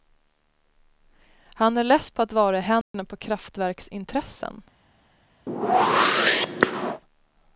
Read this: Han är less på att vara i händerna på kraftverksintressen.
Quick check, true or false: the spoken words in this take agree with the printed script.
true